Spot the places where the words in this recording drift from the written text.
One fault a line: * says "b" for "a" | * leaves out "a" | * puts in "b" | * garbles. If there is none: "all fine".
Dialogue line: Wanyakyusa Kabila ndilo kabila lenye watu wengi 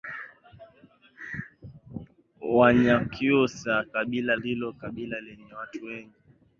all fine